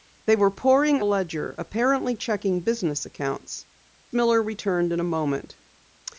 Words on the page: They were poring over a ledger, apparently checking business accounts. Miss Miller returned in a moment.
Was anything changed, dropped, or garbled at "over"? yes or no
yes